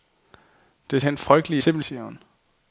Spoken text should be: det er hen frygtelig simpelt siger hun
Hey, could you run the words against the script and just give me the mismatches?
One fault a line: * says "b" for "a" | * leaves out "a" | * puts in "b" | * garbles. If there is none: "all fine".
all fine